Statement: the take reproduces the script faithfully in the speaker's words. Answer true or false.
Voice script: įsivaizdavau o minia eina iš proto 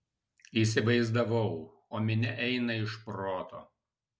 true